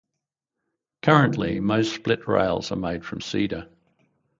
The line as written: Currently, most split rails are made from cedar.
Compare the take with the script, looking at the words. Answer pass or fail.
pass